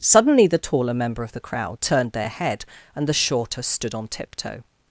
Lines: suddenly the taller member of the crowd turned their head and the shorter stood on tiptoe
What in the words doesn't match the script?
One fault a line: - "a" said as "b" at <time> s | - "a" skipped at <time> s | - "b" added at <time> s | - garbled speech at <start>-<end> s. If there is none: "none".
none